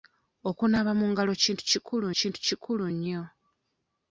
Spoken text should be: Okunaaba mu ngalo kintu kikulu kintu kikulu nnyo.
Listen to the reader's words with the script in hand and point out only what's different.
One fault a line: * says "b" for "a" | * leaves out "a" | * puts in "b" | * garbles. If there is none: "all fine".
all fine